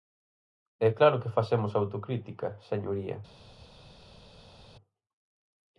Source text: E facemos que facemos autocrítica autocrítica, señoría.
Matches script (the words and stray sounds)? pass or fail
fail